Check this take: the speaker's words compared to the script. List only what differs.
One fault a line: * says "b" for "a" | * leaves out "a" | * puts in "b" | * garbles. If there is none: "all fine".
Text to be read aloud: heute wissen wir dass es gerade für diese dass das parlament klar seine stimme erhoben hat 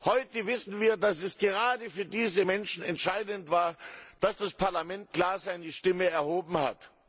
* puts in "menschen entscheidend war"